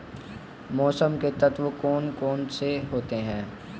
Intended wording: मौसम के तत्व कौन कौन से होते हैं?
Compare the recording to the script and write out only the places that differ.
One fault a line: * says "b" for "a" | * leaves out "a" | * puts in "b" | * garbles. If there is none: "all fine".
all fine